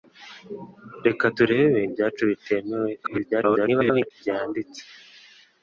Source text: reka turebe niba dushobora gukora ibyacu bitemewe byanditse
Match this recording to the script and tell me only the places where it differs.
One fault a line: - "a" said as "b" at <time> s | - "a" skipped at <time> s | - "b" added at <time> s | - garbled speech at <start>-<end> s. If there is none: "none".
- "niba dushobora gukora" skipped at 1.8 s
- garbled speech at 3.0-4.1 s